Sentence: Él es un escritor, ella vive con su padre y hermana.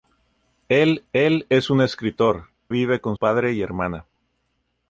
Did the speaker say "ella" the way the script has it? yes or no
no